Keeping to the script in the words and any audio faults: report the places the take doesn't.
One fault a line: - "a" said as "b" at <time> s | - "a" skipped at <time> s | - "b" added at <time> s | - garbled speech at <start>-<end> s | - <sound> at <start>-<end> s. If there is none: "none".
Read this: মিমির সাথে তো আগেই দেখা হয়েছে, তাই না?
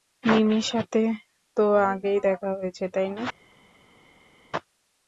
none